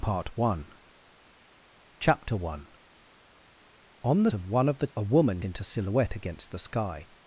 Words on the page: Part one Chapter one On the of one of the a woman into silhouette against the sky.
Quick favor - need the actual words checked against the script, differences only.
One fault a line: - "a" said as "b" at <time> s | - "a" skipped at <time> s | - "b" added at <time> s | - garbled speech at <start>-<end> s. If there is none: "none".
none